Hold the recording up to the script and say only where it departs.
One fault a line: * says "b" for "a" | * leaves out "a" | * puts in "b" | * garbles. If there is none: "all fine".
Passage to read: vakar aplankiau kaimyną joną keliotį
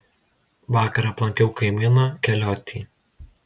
* leaves out "joną"